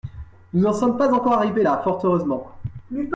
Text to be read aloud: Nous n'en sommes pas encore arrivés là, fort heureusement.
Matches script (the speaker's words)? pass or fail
pass